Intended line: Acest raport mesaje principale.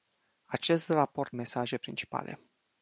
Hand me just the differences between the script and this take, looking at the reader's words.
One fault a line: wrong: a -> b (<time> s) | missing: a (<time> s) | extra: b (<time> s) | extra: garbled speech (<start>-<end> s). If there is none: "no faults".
no faults